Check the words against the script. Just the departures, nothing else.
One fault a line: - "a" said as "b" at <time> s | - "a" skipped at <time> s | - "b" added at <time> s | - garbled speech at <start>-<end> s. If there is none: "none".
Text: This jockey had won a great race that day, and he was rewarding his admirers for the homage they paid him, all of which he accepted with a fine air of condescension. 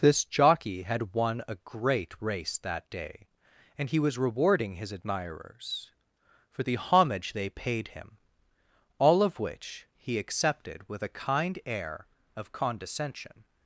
- "fine" said as "kind" at 11.1 s